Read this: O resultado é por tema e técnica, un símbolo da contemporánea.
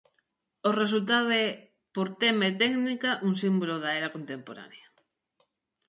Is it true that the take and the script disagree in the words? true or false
true